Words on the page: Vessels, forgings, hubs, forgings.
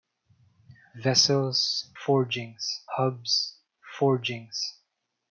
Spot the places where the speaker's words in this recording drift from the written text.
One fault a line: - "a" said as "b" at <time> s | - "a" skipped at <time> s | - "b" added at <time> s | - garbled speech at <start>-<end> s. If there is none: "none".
none